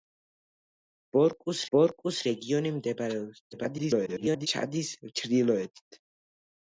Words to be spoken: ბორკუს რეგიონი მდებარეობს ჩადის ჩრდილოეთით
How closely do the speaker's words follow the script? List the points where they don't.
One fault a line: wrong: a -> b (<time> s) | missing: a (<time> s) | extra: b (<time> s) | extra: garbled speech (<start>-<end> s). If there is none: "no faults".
extra: ბორკუს (1.8 s)
extra: garbled speech (3.5-4.5 s)